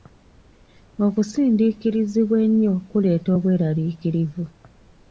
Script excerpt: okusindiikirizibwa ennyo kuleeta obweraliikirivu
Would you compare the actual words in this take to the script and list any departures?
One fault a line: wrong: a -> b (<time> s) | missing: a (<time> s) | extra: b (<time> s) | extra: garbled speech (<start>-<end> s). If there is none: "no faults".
no faults